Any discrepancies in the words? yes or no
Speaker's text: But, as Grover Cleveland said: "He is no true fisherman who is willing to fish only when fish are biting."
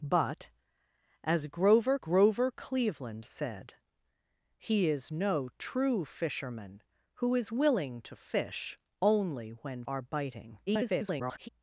yes